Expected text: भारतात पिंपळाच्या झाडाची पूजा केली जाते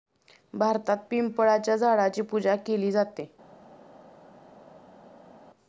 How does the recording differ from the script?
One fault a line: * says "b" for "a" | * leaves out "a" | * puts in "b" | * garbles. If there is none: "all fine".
all fine